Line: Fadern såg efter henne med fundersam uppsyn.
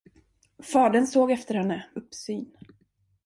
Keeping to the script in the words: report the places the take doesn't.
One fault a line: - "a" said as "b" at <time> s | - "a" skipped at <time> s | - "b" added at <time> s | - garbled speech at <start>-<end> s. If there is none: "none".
- "med fundersam" skipped at 1.9 s